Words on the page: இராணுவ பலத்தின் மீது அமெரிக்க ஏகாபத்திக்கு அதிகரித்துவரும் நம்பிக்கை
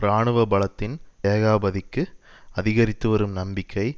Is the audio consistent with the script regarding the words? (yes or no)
no